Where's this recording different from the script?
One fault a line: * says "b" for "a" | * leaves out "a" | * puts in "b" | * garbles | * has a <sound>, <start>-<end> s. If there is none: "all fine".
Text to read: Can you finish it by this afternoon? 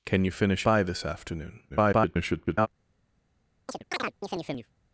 * leaves out "it"
* garbles
* has a chirp, 3.7-4.7 s